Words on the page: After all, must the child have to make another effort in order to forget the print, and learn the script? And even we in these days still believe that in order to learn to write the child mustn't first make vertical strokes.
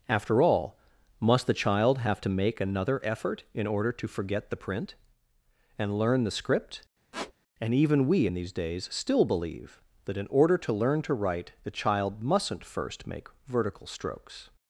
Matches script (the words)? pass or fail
pass